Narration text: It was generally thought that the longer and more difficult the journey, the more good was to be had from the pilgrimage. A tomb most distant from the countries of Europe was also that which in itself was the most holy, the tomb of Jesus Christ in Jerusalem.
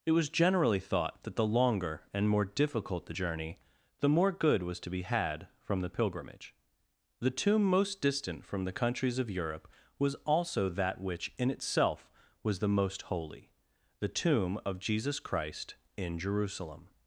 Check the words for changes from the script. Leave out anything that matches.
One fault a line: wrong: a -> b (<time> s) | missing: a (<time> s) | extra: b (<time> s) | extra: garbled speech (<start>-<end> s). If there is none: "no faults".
wrong: A -> The (7.2 s)